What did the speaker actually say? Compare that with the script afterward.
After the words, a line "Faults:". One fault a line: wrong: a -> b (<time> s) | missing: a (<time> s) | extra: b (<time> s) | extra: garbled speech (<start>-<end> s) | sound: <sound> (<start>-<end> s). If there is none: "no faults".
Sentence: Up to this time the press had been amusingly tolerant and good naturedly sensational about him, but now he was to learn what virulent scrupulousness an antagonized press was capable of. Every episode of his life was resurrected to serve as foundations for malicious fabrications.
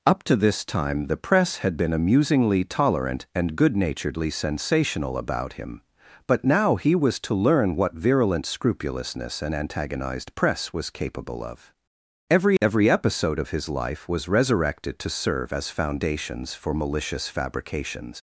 Up to this time the press had been amusingly tolerant and good naturedly sensational about him, but now he was to learn what virulent scrupulousness an antagonized press was capable of. Every Every episode of his life was resurrected to serve as foundations for malicious fabrications.
Faults:
extra: Every (12.6 s)